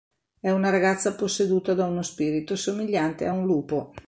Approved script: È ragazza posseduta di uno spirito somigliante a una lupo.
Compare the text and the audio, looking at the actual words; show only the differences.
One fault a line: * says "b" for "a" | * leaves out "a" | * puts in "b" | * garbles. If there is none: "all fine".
* puts in "una"
* says "da" for "di"
* says "un" for "una"